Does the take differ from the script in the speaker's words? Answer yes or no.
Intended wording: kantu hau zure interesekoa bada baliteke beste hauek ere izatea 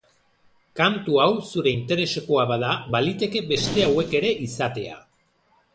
no